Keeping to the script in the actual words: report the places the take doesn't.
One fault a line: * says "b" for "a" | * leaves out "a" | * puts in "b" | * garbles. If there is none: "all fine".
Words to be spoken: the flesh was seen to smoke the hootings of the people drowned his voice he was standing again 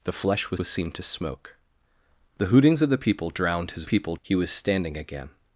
* puts in "was"
* says "people" for "voice"